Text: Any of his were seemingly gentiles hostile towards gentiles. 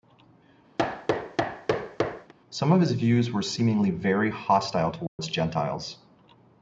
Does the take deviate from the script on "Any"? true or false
true